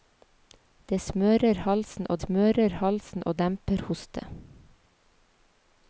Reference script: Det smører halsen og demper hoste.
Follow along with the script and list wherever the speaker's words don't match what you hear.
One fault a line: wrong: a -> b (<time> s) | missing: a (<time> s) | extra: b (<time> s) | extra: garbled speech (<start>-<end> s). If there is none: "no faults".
extra: smører halsen og (2.1 s)